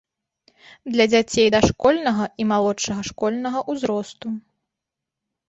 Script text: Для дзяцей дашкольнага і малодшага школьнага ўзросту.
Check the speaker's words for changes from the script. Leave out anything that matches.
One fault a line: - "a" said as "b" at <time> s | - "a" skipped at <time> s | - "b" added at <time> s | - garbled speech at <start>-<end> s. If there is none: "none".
none